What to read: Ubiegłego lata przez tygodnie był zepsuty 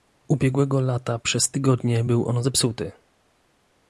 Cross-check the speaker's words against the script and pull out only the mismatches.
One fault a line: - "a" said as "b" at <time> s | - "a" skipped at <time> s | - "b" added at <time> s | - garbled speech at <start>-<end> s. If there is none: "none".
- "on" added at 2.3 s